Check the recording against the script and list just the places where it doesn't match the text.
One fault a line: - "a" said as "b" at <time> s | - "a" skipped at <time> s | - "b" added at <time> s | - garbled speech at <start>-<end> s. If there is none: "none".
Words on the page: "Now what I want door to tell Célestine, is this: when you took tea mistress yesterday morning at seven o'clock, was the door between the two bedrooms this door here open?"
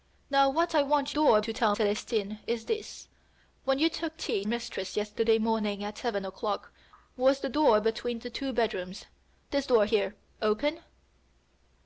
none